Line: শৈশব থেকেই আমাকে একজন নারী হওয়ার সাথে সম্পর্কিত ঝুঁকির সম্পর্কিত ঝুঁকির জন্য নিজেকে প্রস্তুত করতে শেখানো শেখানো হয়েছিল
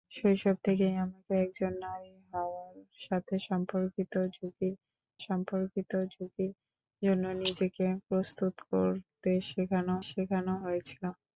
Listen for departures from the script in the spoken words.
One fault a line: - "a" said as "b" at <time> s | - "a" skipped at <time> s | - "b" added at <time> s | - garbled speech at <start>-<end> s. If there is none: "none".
none